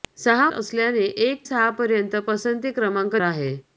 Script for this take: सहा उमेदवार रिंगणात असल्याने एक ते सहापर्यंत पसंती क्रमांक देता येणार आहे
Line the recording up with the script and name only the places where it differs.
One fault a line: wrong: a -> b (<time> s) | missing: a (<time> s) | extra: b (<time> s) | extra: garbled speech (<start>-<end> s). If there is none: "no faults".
missing: उमेदवार रिंगणात (0.5 s)
missing: ते (1.5 s)
missing: देता येणार (3.2 s)